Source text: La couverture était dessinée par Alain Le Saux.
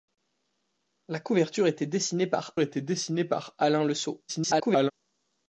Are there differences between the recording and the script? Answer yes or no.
yes